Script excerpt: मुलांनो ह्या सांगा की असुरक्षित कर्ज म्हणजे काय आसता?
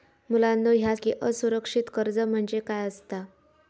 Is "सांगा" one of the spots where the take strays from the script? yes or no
yes